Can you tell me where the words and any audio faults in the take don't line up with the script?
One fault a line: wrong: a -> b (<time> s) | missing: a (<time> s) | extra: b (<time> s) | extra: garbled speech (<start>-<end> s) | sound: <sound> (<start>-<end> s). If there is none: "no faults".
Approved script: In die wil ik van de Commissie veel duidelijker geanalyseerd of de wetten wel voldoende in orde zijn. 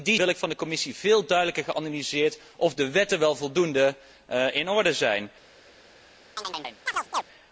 sound: chirp (6.4-7.2 s)